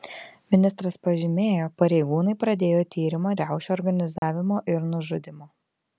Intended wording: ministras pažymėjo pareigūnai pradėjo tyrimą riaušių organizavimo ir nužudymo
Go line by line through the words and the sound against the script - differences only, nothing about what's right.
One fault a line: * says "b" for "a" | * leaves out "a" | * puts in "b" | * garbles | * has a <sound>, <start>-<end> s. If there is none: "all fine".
* has a dropout, 4.2-4.2 s